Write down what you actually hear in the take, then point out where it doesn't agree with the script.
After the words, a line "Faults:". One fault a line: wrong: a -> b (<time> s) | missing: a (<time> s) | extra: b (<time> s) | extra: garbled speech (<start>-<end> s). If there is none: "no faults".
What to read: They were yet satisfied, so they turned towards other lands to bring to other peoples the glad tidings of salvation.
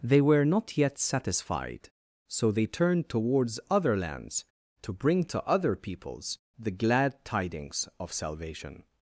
They were not yet satisfied, so they turned towards other lands to bring to other peoples the glad tidings of salvation.
Faults:
extra: not (0.5 s)